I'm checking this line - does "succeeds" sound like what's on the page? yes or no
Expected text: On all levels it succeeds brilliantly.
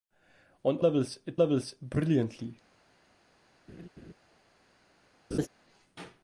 no